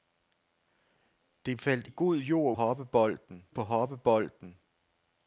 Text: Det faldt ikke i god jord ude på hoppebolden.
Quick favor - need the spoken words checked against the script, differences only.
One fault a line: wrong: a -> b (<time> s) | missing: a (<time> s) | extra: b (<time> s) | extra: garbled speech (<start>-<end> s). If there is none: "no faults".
missing: ikke (1.9 s)
wrong: ude -> hoppebolden (2.5 s)